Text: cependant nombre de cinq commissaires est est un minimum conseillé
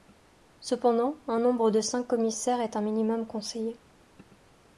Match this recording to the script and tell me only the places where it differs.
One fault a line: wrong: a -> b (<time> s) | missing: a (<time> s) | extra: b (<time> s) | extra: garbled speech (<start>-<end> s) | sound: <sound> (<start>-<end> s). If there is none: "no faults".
extra: un (1.3 s)
missing: est (2.8 s)